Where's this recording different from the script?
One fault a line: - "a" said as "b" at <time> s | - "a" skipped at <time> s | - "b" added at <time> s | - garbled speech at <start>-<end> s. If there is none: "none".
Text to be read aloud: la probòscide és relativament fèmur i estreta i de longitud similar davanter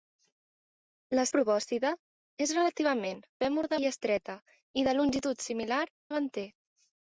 none